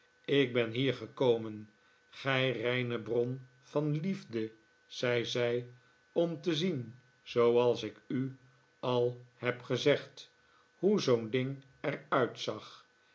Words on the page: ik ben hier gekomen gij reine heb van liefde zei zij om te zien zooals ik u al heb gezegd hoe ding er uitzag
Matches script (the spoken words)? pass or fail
fail